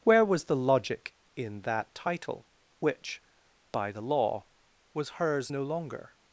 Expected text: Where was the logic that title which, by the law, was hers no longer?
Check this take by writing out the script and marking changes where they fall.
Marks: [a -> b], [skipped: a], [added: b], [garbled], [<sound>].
Where was the logic [added: in] that title which, by the law, was hers no longer?